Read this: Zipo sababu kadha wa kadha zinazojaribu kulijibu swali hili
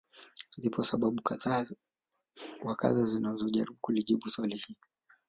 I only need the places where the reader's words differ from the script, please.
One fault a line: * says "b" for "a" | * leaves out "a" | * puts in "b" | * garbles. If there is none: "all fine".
all fine